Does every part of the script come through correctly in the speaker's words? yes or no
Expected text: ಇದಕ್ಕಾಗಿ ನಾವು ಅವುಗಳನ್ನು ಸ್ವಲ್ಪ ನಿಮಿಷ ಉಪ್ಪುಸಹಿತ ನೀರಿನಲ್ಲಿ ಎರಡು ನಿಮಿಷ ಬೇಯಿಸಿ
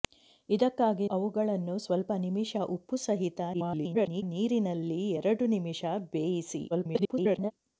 no